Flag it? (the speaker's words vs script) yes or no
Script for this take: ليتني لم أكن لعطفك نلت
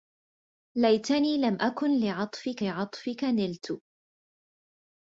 yes